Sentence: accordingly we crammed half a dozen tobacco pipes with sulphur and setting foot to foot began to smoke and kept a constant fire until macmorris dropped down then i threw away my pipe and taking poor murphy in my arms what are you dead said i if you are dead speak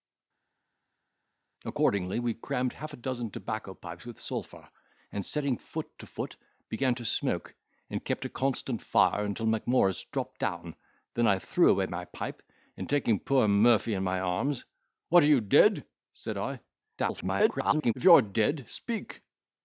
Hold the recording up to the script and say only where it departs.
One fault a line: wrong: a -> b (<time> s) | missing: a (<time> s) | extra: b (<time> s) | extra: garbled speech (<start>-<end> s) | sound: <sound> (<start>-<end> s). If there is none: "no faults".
extra: garbled speech (17.0-17.9 s)